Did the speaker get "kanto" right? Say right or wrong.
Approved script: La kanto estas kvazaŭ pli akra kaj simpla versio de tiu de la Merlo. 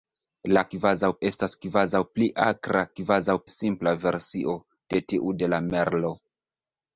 wrong